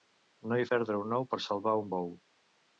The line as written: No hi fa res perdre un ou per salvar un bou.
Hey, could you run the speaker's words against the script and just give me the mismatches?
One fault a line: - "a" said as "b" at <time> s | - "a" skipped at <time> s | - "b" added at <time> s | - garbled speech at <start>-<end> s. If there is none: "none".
- "fa res" skipped at 0.6 s